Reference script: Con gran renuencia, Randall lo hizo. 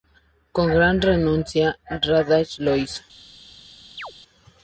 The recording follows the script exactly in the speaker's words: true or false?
true